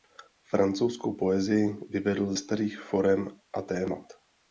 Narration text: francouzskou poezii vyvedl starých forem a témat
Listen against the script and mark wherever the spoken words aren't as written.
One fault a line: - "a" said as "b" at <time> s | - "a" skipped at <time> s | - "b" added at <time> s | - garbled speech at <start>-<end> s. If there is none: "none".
none